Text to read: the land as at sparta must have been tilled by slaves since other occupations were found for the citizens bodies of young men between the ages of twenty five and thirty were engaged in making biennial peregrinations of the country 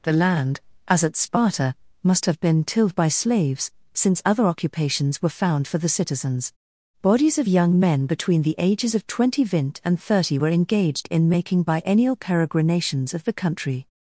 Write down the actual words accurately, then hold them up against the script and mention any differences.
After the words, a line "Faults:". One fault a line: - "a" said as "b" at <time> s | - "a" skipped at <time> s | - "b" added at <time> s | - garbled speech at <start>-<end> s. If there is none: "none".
the land as at sparta must have been tilled by slaves since other occupations were found for the citizens bodies of young men between the ages of twenty vint and thirty were engaged in making biennial peregrinations of the country
Faults:
- "five" said as "vint" at 9.4 s